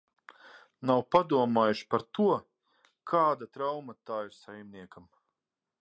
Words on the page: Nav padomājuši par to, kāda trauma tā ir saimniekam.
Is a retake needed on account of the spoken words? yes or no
no